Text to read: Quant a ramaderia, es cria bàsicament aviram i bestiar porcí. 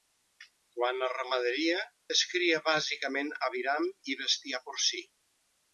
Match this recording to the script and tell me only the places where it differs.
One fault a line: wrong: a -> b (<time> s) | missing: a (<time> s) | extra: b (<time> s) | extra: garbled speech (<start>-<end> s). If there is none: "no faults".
no faults